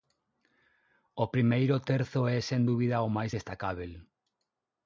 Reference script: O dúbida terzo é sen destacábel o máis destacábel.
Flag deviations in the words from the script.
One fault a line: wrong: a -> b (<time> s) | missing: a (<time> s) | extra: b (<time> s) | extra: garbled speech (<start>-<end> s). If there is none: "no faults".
wrong: dúbida -> primeiro (1.4 s)
wrong: destacábel -> dúbida (2.7 s)